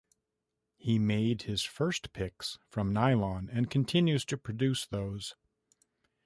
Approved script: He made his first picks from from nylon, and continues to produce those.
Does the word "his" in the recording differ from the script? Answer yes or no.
no